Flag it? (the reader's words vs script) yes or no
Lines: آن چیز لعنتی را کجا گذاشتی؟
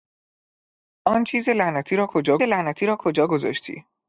yes